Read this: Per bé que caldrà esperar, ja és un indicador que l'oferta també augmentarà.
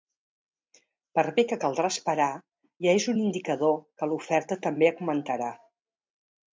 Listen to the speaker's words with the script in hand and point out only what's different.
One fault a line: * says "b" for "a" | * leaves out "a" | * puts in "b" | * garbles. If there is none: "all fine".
all fine